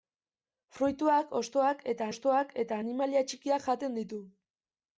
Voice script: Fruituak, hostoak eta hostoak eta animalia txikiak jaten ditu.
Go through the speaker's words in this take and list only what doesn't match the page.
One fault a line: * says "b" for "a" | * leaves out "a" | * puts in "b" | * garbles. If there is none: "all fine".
all fine